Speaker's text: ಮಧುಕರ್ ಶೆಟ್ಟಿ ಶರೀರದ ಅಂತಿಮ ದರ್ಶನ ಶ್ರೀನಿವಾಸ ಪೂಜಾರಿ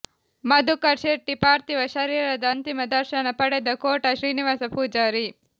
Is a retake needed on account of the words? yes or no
yes